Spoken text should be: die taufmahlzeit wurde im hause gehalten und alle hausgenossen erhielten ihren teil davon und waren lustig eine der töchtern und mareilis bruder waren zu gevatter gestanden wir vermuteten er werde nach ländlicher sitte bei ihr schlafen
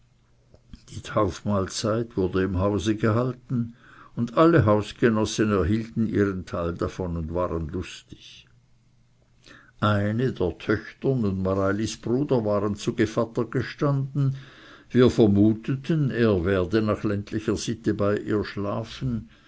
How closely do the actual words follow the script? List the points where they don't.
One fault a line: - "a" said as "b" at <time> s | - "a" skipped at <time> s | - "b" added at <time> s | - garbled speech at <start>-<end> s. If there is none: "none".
none